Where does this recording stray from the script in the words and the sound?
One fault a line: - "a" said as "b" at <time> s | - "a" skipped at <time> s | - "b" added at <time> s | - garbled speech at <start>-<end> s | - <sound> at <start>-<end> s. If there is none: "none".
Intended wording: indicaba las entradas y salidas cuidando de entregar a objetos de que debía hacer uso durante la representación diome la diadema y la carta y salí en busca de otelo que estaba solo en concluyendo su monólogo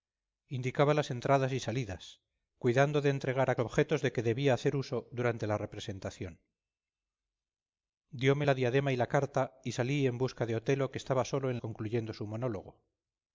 none